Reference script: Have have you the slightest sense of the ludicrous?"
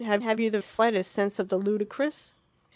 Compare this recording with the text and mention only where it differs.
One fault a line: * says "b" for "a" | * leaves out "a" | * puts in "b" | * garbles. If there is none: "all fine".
all fine